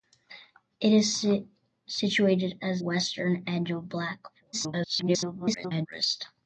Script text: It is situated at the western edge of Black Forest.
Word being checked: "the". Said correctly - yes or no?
no